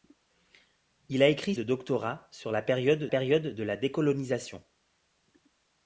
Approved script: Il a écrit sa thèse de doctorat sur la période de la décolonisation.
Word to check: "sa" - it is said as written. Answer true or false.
false